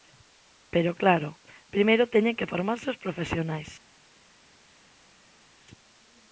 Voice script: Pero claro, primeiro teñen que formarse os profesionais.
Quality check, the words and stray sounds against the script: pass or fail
pass